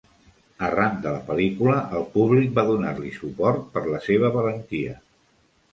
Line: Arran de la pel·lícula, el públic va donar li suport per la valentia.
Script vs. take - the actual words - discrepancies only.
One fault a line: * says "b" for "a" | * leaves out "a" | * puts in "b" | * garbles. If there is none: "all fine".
* puts in "seva"